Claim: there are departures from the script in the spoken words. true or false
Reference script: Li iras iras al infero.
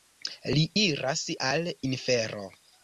true